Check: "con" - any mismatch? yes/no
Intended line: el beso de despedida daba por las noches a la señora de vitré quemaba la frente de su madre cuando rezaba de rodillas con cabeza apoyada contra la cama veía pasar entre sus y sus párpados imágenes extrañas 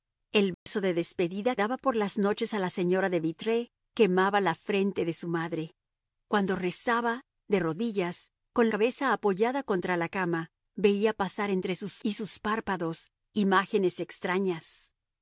no